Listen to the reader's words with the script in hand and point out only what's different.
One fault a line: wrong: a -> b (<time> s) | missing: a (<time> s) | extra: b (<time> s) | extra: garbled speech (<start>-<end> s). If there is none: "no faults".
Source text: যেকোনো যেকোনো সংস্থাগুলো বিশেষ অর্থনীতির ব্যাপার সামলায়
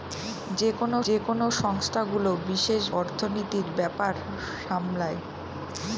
no faults